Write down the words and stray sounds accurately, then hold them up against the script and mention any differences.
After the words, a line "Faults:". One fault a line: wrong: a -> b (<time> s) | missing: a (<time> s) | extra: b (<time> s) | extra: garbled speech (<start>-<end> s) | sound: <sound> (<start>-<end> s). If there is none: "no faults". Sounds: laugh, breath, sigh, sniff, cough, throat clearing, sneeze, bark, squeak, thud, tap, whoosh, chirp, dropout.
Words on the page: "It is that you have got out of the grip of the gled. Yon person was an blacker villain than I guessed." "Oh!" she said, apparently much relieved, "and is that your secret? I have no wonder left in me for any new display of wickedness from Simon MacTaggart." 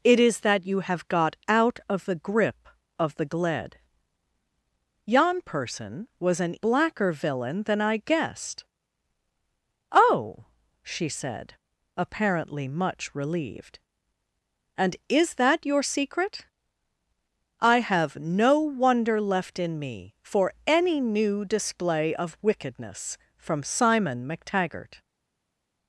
"It is that you have got out of the grip of the gled. Yon person was an blacker villain than I guessed." "Oh!" she said, apparently much relieved, "and is that your secret? I have no wonder left in me for any new display of wickedness from Simon MacTaggart."
Faults:
no faults